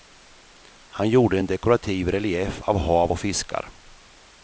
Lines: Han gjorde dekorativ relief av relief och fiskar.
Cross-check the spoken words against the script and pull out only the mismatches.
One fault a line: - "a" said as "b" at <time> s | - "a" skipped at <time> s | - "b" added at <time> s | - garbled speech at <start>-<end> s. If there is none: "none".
- "en" added at 1.4 s
- "relief" said as "hav" at 2.8 s